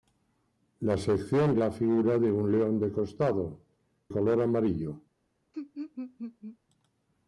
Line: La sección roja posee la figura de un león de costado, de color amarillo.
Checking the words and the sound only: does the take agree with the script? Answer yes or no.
no